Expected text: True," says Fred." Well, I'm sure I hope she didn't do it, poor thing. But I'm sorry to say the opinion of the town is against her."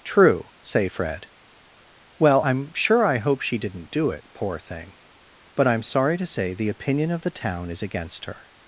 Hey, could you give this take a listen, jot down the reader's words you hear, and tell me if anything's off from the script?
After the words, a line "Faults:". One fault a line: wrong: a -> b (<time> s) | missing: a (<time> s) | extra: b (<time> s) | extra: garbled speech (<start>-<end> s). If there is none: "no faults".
True," say Fred." Well, I'm sure I hope she didn't do it, poor thing. But I'm sorry to say the opinion of the town is against her."
Faults:
wrong: says -> say (0.6 s)